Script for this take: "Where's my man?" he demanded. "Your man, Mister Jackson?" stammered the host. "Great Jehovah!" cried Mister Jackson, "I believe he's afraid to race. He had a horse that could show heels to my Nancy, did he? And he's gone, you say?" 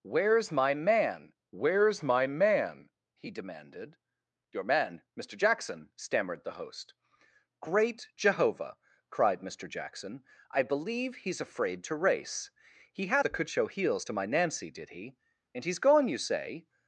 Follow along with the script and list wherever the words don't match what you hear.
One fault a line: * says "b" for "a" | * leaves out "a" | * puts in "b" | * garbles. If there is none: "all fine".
* puts in "where's my man"
* leaves out "a horse"